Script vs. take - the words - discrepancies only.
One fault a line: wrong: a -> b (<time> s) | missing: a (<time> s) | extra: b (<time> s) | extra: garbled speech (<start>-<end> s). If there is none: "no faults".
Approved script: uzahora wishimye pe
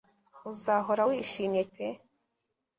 no faults